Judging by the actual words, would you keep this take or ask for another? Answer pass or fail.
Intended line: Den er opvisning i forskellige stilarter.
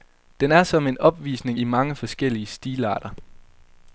fail